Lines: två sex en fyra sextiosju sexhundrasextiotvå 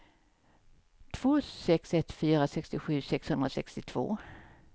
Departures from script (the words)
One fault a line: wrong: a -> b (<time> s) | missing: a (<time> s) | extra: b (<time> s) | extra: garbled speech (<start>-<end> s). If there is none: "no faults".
wrong: en -> ett (1.9 s)